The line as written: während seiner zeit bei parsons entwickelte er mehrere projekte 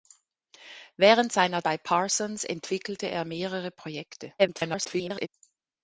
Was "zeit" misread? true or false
true